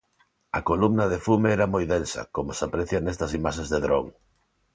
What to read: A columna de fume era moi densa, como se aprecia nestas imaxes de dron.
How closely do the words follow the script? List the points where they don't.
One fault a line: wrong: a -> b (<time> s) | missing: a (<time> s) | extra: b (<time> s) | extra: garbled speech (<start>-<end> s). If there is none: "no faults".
no faults